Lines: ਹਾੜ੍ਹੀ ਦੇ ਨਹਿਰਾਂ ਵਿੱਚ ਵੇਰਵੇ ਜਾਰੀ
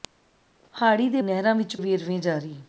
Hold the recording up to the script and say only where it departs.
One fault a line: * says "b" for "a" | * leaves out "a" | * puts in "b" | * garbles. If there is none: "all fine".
all fine